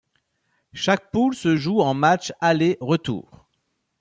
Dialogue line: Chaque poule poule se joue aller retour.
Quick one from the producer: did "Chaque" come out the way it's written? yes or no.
yes